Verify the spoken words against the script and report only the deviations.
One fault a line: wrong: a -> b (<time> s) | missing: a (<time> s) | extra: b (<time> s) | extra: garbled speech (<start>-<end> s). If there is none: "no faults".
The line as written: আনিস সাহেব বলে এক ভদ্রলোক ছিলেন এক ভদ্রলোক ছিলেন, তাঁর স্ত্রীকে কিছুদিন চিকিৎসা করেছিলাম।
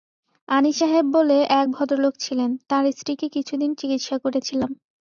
missing: এক ভদ্রলোক ছিলেন (2.5 s)